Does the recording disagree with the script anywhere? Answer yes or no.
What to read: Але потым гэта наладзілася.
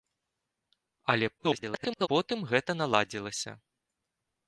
yes